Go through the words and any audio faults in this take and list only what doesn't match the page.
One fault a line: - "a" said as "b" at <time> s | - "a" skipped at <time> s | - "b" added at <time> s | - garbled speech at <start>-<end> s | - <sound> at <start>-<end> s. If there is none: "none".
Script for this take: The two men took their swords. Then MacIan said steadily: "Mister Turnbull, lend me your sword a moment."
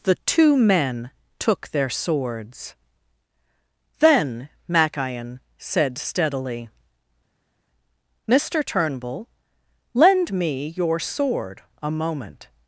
none